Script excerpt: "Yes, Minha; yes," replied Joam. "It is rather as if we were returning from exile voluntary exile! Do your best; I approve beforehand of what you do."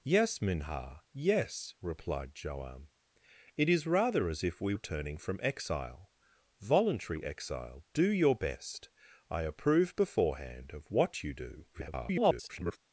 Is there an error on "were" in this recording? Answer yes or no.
yes